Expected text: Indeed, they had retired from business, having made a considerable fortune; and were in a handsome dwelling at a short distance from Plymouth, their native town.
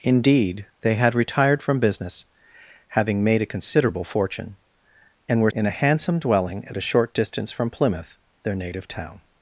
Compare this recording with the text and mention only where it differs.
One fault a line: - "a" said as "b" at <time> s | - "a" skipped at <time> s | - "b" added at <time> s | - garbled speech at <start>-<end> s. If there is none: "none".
none